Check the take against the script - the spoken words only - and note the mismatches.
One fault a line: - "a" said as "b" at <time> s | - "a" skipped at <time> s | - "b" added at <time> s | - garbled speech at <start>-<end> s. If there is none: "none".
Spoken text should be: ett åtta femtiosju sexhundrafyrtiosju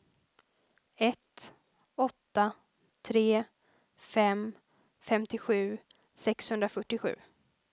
- "tre fem" added at 3.0 s